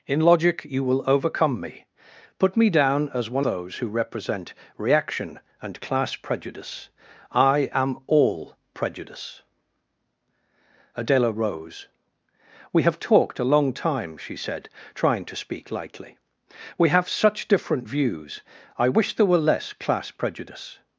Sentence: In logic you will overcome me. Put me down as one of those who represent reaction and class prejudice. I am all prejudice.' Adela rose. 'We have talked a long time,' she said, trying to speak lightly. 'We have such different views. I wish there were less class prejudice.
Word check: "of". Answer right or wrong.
wrong